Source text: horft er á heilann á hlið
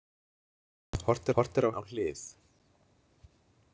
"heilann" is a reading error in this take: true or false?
true